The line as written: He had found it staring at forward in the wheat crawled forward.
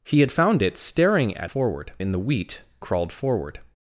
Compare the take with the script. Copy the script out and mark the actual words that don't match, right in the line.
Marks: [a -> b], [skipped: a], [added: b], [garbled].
He had found it staring at forward in the wheat crawled forward.